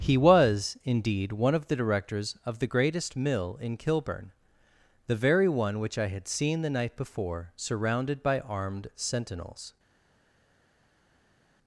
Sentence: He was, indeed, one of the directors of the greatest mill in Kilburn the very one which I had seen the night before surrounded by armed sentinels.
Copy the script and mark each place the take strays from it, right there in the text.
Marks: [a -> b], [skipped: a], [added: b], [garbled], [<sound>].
He was, indeed, one of the directors of the greatest mill in Kilburn the very one which I had seen the night before surrounded by armed sentinels.